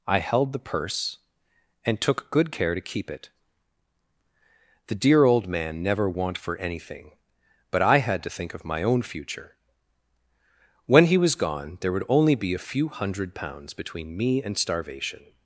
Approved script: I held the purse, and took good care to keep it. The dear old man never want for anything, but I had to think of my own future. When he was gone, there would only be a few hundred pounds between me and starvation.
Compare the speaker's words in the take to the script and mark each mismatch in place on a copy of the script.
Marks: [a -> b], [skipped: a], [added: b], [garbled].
I held the purse, and took good care to keep it. The dear old man never want for anything, but I had to think of my own future. When he was gone, there would only be a few hundred pounds between me and starvation.